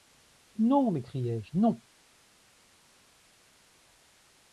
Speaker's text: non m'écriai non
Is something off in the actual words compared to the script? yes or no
yes